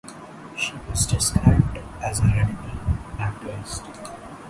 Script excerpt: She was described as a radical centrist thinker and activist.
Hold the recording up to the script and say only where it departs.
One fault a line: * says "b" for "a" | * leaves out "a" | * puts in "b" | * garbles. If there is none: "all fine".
* leaves out "centrist thinker and"